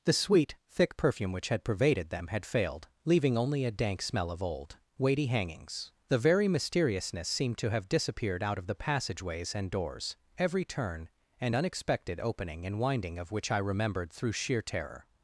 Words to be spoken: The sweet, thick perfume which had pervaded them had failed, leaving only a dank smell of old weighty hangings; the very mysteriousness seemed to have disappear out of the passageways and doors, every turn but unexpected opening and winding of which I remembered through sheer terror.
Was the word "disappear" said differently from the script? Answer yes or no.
yes